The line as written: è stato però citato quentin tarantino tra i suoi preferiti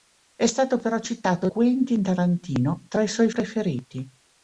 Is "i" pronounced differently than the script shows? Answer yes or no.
no